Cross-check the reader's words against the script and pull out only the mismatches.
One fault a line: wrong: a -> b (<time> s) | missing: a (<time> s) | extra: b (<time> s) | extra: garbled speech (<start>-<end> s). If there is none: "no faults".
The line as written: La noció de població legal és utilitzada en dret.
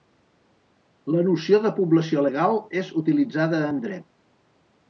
no faults